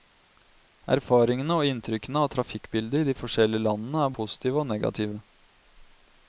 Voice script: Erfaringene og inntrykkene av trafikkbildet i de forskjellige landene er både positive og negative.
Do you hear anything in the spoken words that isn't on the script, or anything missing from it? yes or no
yes